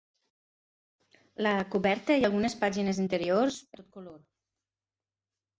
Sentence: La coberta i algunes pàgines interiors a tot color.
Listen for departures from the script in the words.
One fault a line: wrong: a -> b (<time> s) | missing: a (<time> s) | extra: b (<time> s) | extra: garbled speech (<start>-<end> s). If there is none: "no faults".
no faults